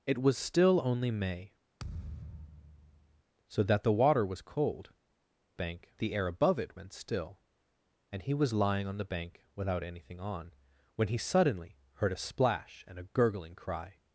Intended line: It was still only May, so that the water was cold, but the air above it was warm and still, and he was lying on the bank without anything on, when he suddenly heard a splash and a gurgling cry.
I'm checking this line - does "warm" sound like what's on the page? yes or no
no